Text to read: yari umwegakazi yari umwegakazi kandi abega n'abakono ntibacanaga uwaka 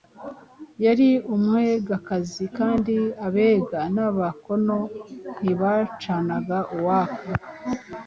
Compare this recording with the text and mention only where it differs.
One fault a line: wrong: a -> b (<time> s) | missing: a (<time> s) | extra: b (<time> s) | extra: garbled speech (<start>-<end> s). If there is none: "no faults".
missing: yari umwegakazi (2.5 s)